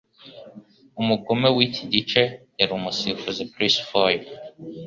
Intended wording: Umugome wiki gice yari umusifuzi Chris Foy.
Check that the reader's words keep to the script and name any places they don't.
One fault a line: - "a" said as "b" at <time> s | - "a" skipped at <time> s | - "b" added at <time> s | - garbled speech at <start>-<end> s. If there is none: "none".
none